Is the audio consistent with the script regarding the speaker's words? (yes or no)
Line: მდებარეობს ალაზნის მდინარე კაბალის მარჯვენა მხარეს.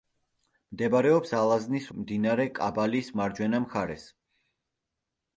yes